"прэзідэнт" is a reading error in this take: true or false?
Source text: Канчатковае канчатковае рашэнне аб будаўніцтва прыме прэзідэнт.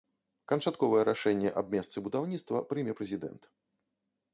false